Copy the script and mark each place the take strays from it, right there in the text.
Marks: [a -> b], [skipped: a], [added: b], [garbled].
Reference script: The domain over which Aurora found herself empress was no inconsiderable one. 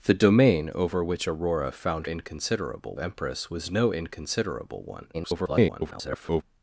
The domain over which Aurora found [herself -> inconsiderable] empress was no inconsiderable one. [garbled]